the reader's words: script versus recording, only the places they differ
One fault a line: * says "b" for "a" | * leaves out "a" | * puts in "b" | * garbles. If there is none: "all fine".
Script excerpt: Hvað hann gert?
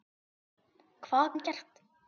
all fine